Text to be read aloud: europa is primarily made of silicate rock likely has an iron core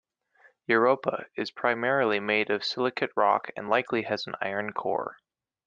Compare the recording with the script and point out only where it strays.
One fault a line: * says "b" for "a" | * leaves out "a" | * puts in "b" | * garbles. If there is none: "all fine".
* puts in "and"